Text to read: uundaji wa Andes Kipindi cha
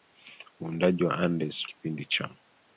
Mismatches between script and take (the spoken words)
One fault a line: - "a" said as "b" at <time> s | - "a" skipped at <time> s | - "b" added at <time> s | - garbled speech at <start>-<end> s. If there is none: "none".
none